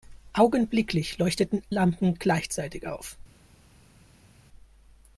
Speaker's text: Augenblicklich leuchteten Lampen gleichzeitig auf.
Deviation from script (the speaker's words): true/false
false